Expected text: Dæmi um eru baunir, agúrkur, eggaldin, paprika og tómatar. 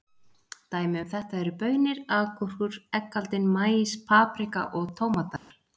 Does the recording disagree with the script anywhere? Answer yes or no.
yes